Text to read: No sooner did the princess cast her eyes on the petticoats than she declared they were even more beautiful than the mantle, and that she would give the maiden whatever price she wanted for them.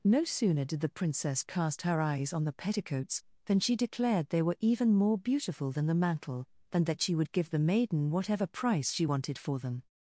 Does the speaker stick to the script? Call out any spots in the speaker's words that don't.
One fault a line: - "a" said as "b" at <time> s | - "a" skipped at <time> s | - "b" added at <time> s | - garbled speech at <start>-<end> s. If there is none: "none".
none